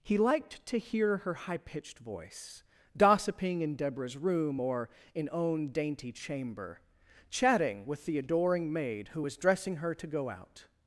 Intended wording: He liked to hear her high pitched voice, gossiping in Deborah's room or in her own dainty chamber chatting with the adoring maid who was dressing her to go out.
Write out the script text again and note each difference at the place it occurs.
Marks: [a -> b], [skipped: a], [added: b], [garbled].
He liked to hear her high pitched voice, gossiping in Deborah's room or in [skipped: her] own dainty chamber chatting with the adoring maid who was dressing her to go out.